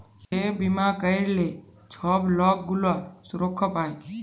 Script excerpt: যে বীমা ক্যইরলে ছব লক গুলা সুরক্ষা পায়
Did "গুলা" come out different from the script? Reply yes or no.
no